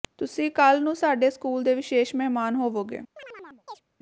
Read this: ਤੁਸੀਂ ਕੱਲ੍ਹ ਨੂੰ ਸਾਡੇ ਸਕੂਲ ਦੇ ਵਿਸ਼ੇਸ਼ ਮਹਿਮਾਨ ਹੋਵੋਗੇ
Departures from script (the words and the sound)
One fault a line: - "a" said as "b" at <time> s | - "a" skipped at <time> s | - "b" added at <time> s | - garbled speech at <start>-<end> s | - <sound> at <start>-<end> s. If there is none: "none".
- chirp at 3.2-3.8 s